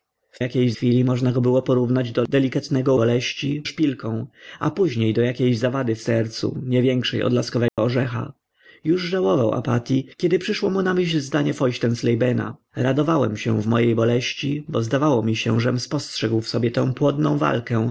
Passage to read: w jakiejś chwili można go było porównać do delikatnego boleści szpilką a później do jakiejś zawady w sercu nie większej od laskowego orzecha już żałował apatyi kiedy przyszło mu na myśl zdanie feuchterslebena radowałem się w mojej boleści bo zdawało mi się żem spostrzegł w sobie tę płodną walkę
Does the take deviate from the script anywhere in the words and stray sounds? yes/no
yes